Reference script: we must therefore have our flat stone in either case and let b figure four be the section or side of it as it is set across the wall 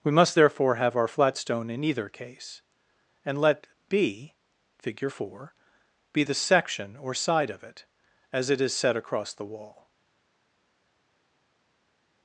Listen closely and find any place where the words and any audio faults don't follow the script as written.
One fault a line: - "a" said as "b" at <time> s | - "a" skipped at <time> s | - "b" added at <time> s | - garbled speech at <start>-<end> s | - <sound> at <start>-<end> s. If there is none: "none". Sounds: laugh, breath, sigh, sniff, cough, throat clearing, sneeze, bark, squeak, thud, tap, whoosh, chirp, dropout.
none